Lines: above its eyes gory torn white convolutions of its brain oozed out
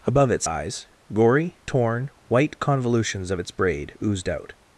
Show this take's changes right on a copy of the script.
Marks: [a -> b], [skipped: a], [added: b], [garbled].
above its eyes gory torn white convolutions of its [brain -> braid] oozed out